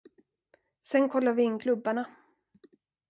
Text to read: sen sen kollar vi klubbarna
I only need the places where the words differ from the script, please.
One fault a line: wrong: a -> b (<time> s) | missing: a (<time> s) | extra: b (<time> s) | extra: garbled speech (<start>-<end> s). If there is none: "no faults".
missing: sen (1.1 s)
extra: in (1.4 s)